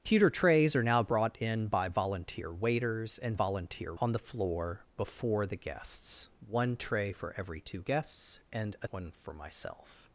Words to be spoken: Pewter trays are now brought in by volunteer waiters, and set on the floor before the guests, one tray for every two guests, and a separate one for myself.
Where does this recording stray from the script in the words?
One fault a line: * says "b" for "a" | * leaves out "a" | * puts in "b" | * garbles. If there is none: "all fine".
* says "volunteer" for "set"
* leaves out "separate"